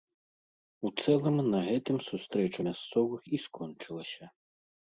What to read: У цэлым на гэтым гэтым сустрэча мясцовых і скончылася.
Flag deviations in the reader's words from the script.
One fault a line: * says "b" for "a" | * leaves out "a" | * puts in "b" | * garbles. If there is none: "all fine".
* leaves out "гэтым"